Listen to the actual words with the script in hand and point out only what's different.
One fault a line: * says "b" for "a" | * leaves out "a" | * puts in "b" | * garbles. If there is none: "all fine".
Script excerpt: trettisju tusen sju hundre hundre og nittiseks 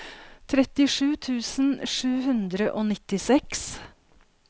* leaves out "hundre"